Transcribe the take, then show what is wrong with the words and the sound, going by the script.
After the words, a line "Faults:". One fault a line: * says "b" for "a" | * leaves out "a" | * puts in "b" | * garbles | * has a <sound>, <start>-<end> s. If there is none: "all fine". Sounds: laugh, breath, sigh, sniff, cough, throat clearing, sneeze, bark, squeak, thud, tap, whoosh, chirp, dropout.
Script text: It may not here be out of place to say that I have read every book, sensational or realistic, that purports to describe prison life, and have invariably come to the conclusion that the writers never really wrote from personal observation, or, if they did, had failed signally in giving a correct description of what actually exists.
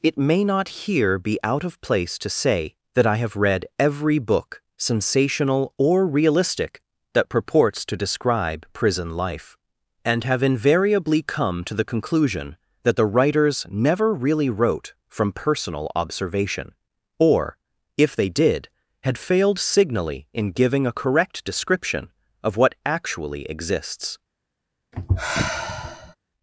It may not here be out of place to say that I have read every book, sensational or realistic, that purports to describe prison life, and have invariably come to the conclusion that the writers never really wrote from personal observation, or, if they did, had failed signally in giving a correct description of what actually exists.
Faults:
* has a sigh, 24.9-26.2 s